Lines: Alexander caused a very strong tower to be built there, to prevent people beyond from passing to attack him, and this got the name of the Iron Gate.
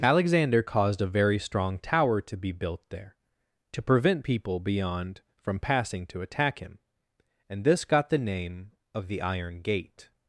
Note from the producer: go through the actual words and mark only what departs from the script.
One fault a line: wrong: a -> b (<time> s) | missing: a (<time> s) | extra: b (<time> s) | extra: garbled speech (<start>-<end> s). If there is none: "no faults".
no faults